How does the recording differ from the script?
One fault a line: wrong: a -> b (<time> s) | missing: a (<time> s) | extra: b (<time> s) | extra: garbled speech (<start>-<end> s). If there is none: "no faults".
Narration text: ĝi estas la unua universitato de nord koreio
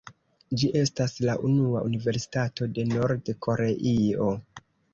no faults